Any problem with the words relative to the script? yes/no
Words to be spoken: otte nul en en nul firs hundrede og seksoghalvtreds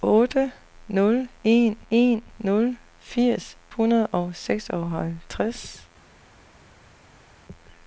no